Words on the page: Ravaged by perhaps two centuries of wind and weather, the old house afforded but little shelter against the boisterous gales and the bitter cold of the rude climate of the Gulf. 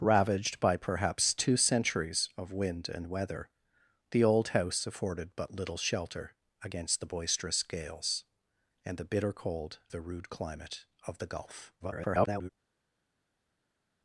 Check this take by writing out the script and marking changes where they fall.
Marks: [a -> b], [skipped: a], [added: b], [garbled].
Ravaged by perhaps two centuries of wind and weather, the old house afforded but little shelter against the boisterous gales and the bitter cold [skipped: of] the rude climate of the Gulf. [garbled]